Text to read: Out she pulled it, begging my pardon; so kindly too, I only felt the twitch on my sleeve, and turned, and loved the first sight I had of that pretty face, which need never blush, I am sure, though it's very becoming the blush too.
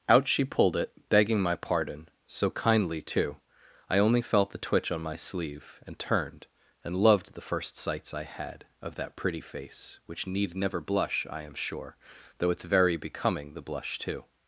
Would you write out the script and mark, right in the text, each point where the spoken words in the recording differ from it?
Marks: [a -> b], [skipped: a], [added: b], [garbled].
Out she pulled it, begging my pardon; so kindly too, I only felt the twitch on my sleeve, and turned, and loved the first [sight -> sights] I had of that pretty face, which need never blush, I am sure, though it's very becoming the blush too.